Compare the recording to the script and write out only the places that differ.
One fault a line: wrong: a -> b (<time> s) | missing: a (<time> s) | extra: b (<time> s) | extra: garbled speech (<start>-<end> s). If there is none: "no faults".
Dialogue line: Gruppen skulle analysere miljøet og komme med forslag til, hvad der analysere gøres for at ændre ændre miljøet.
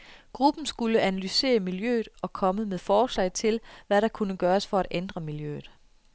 wrong: analysere -> kunne (4.1 s)
missing: ændre (5.2 s)